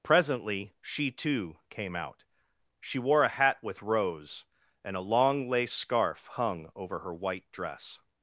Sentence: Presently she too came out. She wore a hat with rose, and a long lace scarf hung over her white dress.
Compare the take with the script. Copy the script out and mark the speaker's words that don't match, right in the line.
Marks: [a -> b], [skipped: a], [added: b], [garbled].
Presently she too came out. She wore a hat with rose, and a long lace scarf hung over her white dress.